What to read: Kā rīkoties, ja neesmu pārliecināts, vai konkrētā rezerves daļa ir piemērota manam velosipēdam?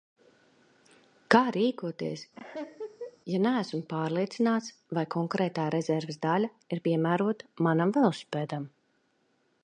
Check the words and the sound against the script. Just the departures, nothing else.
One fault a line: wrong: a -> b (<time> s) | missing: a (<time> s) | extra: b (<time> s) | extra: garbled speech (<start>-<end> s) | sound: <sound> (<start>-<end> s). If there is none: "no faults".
sound: laugh (2.3-3.2 s)